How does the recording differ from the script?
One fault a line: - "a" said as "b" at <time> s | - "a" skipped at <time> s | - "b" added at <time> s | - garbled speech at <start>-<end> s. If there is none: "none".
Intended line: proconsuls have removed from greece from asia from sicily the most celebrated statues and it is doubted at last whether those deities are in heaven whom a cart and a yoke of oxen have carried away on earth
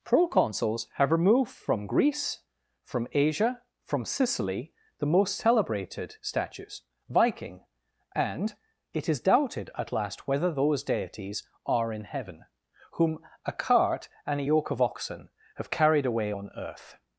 - "viking" added at 7.1 s